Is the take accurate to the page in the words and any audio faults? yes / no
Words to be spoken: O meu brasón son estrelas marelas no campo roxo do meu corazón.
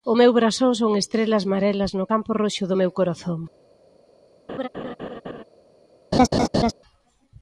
no